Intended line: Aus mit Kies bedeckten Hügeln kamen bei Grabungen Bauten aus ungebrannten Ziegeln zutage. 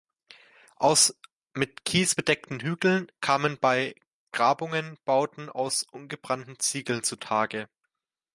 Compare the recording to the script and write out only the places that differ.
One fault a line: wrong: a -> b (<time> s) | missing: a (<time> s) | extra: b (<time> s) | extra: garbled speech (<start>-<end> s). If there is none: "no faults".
no faults